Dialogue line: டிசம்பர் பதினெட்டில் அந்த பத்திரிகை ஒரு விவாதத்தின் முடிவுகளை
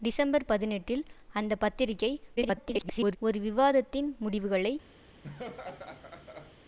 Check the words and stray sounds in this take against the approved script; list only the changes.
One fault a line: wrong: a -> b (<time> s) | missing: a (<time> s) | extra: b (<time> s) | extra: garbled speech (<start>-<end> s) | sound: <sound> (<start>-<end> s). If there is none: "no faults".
extra: garbled speech (2.4-3.2 s)
sound: laugh (5.2-6.6 s)